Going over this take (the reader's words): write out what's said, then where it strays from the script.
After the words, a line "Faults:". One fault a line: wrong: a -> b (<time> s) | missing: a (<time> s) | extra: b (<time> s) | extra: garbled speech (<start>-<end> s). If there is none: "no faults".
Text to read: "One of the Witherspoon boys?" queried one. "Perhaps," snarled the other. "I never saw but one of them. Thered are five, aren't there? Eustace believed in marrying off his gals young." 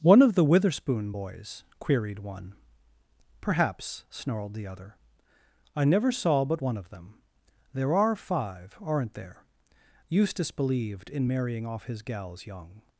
"One of the Witherspoon boys?" queried one. "Perhaps," snarled the other. "I never saw but one of them. There are five, aren't there? Eustace believed in marrying off his gals young."
Faults:
wrong: Thered -> There (7.7 s)